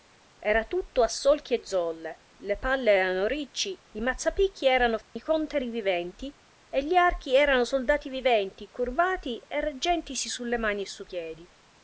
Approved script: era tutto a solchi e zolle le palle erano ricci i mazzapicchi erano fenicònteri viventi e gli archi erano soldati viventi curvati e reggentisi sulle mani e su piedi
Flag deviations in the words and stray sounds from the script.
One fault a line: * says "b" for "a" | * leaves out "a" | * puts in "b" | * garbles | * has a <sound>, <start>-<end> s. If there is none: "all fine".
* has a dropout, 5.0-5.2 s